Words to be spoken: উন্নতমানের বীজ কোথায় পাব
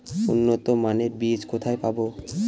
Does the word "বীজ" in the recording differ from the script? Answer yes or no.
no